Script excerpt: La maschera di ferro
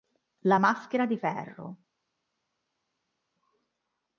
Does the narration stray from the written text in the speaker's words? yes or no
no